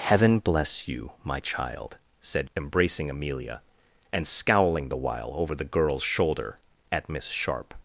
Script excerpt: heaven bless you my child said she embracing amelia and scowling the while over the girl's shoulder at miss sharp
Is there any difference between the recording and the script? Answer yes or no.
yes